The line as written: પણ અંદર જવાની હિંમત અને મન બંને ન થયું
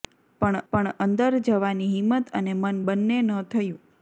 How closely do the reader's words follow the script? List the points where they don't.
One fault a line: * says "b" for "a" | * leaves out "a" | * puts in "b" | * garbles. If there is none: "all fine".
* puts in "પણ"